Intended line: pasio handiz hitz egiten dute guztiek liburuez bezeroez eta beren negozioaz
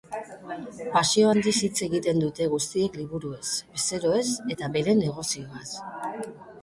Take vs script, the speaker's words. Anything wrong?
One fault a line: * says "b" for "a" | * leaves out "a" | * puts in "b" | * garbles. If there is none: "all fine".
all fine